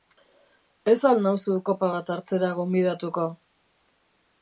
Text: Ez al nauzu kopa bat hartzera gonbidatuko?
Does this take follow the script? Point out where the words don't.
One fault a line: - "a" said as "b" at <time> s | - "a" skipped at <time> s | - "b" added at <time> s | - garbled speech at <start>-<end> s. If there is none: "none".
none